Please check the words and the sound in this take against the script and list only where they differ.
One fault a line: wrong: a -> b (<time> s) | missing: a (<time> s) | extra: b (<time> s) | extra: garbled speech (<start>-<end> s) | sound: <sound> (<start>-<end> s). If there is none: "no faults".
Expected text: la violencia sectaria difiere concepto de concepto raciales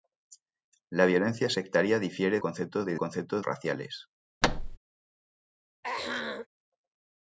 sound: thud (4.4-4.8 s)
sound: throat clearing (5.8-6.5 s)